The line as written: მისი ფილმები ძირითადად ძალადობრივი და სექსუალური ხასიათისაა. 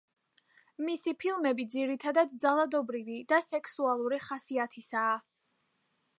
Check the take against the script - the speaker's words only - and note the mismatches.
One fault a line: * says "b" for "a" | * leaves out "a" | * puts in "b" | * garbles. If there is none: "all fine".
all fine